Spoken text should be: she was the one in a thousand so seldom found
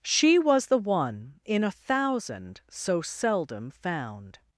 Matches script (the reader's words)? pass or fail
pass